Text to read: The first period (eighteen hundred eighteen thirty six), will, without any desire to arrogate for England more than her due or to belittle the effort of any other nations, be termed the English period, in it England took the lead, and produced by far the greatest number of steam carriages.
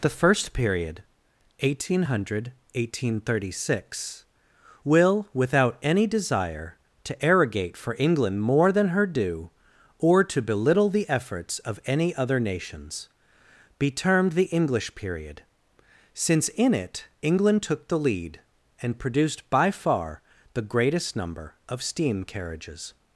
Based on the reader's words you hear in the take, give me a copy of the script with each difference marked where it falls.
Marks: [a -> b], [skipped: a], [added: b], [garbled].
The first period (eighteen hundred eighteen thirty six), will, without any desire to arrogate for England more than her due or to belittle the [effort -> efforts] of any other nations, be termed the English period, [added: since] in it England took the lead, and produced by far the greatest number of steam carriages.